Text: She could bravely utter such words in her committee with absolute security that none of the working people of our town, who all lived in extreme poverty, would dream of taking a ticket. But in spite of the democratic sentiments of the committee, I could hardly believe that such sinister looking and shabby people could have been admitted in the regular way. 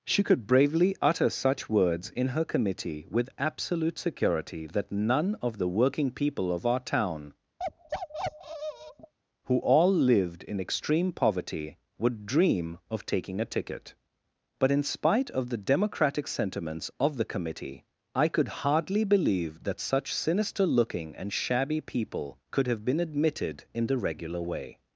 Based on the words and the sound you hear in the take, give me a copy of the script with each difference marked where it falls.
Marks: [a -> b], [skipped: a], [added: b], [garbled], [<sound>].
She could bravely utter such words in her committee with absolute security that none of the working people of our town, [bark] who all lived in extreme poverty, would dream of taking a ticket. But in spite of the democratic sentiments of the committee, I could hardly believe that such sinister looking and shabby people could have been admitted in the regular way.